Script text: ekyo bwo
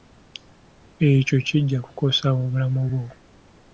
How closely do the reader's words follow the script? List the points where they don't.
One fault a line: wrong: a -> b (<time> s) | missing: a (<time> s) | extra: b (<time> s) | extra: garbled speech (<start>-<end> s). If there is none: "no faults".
extra: kijja kukosa obulamu (1.5 s)